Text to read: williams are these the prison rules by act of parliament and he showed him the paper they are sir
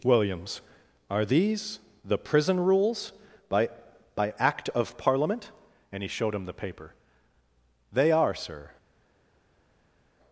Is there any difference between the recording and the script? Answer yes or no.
yes